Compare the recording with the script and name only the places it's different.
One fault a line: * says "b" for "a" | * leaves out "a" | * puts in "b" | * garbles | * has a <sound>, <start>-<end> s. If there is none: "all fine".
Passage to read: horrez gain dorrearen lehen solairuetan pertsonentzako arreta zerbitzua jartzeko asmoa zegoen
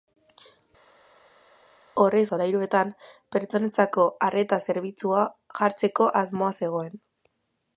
* leaves out "gain dorrearen lehen"